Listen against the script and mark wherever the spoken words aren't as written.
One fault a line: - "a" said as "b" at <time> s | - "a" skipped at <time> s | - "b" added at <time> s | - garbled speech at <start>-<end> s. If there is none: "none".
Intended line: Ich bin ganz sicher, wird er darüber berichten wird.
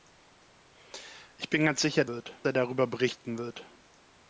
none